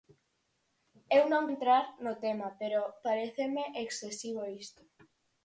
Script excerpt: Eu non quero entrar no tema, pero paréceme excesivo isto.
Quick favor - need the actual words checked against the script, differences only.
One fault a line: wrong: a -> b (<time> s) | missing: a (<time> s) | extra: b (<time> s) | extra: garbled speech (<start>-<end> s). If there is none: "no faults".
missing: quero (1.4 s)